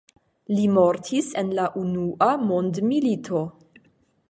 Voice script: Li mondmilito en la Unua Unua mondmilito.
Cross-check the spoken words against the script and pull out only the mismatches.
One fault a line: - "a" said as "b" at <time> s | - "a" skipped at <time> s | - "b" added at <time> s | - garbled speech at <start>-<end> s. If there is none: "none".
- "mondmilito" said as "mortis" at 0.8 s
- "Unua" skipped at 2.3 s